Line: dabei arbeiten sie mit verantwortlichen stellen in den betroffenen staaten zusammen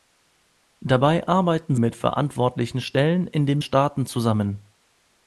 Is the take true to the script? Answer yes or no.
no